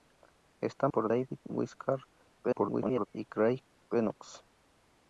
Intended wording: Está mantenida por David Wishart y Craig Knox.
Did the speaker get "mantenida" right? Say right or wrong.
wrong